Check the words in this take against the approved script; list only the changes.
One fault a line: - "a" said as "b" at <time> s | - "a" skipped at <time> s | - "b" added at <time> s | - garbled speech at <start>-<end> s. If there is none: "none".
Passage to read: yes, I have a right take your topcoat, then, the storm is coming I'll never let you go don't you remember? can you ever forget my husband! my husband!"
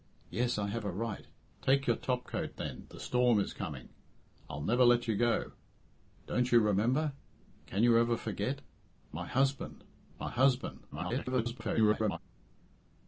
- garbled speech at 10.9-12.2 s